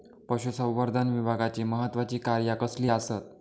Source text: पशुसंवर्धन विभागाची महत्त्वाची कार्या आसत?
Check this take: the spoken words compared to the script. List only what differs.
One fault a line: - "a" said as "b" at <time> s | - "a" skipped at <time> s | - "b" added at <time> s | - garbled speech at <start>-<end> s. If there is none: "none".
- "कसली" added at 2.5 s